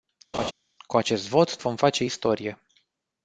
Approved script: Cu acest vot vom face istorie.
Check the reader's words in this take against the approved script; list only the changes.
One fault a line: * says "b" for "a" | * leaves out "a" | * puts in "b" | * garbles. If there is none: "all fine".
all fine